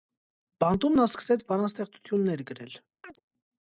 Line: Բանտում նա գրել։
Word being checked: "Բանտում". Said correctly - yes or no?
yes